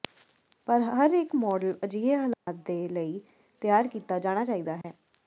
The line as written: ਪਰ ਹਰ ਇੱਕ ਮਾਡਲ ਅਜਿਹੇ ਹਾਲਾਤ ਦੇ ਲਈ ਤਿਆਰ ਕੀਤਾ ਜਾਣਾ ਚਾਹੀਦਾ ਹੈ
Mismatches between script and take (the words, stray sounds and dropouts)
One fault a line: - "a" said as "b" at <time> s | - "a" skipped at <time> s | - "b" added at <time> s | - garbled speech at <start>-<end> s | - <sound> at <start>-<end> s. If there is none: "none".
- dropout at 2.3-2.5 s
- dropout at 4.8-4.8 s